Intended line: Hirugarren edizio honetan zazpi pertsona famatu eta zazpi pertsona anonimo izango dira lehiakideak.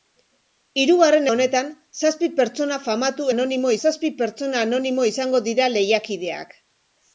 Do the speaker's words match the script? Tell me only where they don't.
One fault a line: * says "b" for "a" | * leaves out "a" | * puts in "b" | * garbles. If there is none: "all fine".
* leaves out "edizio"
* says "anonimo" for "eta"